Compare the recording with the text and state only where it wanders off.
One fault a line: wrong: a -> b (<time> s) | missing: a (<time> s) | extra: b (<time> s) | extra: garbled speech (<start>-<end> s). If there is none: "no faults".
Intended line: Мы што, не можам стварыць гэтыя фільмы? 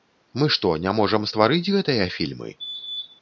no faults